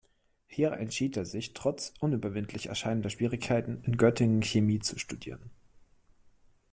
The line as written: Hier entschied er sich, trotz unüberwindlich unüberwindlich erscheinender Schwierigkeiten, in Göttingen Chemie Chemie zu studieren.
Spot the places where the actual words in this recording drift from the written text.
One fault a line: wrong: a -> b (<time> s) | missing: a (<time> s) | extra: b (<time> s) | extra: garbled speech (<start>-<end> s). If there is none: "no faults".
missing: unüberwindlich (2.7 s)
missing: Chemie (4.8 s)